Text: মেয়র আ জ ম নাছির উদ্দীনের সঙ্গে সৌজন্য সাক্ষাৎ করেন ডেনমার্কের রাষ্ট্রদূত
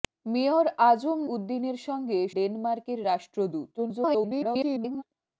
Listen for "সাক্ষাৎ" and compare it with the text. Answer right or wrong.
wrong